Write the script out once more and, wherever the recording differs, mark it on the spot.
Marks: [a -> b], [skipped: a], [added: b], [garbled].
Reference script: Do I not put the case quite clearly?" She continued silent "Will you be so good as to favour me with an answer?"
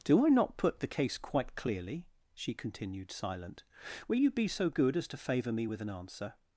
Do I not put the case quite clearly?" She continued silent "Will you be so good as to favour me with an answer?"